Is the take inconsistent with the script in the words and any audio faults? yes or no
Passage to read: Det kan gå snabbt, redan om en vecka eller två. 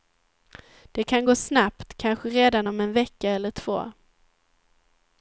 yes